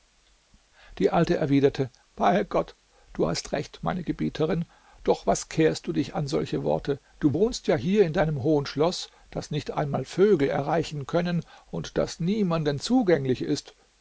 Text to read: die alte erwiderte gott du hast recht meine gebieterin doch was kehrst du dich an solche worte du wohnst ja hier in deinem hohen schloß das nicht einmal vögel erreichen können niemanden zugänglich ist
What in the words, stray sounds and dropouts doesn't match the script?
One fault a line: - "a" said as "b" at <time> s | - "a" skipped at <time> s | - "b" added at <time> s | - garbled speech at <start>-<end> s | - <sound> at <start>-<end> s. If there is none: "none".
- "bei" added at 2.1 s
- "und das" added at 11.7 s